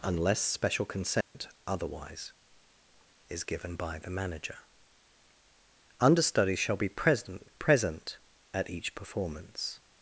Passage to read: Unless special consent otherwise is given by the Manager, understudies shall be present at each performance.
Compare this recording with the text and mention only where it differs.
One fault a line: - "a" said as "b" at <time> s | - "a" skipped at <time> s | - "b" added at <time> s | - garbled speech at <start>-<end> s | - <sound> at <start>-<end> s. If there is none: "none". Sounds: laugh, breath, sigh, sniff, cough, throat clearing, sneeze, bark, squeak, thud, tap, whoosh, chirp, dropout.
- dropout at 1.2-1.3 s
- "present" added at 7.6 s